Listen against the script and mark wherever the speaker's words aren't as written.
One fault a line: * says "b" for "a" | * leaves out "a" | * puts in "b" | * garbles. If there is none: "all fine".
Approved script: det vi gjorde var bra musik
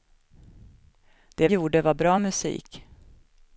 * leaves out "vi"